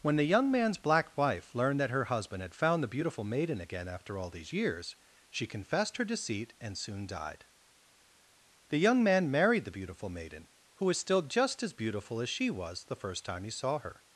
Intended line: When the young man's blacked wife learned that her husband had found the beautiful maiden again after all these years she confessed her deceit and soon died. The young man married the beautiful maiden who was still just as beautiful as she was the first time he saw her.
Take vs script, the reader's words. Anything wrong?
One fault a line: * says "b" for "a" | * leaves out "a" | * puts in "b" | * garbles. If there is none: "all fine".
* says "black" for "blacked"